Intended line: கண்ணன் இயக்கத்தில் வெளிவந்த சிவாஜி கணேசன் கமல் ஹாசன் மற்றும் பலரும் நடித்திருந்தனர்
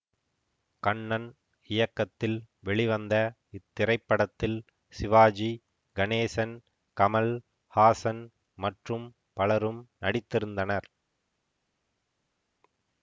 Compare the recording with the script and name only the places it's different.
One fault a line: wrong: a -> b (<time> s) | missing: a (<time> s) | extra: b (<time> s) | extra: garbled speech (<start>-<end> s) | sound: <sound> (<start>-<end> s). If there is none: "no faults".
extra: இத்திரைப்படத்தில் (3.5 s)